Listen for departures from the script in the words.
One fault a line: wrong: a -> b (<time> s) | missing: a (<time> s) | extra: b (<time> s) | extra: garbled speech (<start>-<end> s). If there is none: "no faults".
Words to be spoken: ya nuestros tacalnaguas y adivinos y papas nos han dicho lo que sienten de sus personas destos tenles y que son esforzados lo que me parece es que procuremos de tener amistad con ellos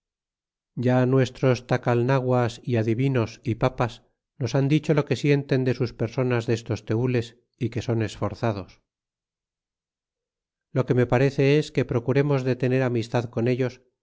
no faults